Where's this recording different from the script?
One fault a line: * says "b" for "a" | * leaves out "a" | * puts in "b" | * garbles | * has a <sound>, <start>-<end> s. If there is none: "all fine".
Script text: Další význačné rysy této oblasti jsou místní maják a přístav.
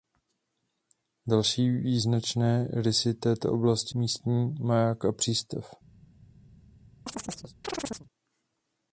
* leaves out "jsou"
* has a chirp, 7.1-8.1 s